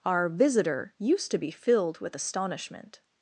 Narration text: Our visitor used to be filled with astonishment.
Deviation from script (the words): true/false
false